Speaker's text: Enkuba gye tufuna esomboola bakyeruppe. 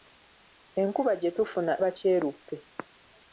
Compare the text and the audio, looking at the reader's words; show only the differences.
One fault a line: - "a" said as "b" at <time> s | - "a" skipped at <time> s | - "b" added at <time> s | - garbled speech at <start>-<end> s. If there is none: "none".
- "esomboola" skipped at 1.7 s